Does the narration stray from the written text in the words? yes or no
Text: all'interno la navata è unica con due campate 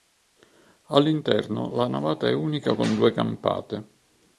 no